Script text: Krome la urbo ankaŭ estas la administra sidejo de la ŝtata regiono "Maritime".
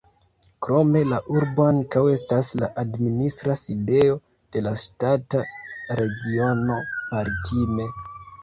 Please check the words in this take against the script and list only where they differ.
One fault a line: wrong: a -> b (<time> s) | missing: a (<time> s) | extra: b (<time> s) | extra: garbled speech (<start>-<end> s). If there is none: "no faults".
no faults